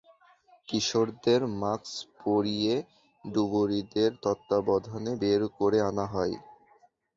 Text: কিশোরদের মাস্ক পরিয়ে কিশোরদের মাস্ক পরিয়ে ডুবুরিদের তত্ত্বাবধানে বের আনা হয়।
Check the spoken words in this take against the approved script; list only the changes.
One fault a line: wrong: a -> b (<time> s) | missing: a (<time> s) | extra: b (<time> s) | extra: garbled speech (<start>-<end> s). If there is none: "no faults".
missing: কিশোরদের মাস্ক পরিয়ে (2.8 s)
extra: করে (5.6 s)